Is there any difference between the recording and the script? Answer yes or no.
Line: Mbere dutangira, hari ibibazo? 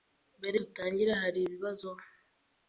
no